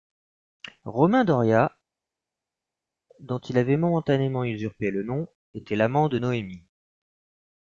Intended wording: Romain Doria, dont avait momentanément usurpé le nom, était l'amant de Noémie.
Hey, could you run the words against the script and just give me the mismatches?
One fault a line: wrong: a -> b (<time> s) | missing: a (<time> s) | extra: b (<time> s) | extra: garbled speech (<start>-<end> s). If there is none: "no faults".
extra: il (3.4 s)